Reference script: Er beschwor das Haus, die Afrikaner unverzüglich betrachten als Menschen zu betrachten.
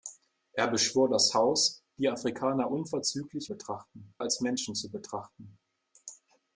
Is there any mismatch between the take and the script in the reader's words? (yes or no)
no